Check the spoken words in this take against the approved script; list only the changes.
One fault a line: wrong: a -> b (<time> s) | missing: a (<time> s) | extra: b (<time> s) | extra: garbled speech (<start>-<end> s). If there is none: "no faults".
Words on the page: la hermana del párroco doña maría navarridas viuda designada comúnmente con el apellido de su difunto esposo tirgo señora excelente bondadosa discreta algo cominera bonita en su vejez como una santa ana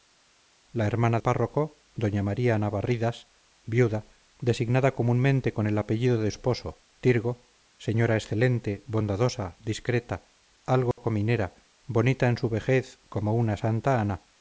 missing: del (1.2 s)
missing: su difunto (6.3 s)